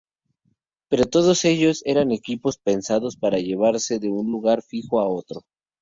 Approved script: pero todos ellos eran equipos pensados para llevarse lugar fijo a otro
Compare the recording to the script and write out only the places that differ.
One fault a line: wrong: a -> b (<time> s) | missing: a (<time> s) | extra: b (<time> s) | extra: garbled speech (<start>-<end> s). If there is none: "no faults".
extra: de un (4.0 s)